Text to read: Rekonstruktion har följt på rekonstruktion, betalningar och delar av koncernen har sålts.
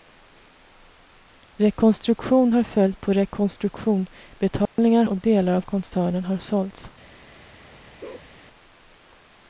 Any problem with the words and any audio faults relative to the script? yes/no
yes